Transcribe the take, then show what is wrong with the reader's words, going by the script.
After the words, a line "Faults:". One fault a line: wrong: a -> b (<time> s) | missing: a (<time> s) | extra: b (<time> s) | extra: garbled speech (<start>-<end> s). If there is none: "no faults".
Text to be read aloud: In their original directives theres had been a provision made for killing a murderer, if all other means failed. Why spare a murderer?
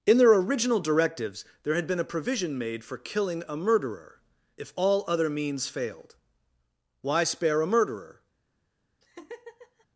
In their original directives there had been a provision made for killing a murderer, if all other means failed. Why spare a murderer?
Faults:
wrong: theres -> there (1.6 s)